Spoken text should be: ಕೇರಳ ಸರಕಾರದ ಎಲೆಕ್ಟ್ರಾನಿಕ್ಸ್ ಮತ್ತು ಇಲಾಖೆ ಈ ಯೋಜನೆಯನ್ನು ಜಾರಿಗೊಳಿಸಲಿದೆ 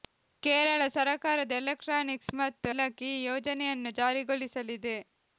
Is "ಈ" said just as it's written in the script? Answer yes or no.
yes